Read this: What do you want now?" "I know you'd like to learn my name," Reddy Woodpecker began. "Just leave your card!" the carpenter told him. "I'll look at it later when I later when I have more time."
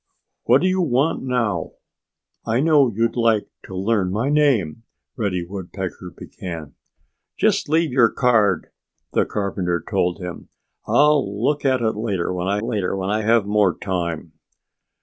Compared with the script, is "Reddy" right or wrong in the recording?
right